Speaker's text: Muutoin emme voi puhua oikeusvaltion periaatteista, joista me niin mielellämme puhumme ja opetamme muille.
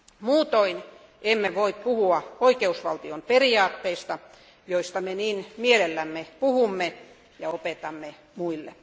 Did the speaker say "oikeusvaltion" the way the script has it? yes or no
yes